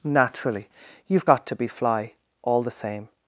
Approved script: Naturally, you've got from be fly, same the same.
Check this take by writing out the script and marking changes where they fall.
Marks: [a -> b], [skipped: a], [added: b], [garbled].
Naturally, you've got [from -> to] be fly, [same -> all] the same.